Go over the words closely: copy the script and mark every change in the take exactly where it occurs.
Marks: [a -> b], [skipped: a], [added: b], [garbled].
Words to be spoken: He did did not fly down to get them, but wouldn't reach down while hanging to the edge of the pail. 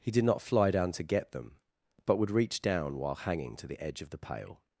He did [skipped: did] not fly down to get them, but [wouldn't -> would] reach down while hanging to the edge of the pail.